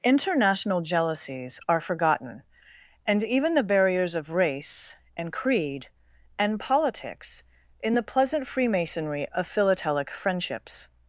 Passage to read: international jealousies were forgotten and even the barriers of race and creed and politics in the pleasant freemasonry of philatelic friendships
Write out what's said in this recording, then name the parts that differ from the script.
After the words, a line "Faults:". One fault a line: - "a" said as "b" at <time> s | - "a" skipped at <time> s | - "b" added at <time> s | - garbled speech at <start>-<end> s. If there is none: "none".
international jealousies are forgotten and even the barriers of race and creed and politics in the pleasant freemasonry of philatelic friendships
Faults:
- "were" said as "are" at 1.7 s